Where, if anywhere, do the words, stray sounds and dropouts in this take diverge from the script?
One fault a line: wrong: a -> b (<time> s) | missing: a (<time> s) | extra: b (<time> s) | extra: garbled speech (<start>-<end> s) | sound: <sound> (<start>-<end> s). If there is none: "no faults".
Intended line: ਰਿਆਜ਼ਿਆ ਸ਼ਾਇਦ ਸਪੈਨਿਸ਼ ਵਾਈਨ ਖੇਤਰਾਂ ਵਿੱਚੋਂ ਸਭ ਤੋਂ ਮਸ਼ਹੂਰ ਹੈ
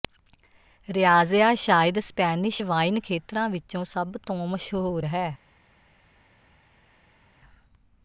no faults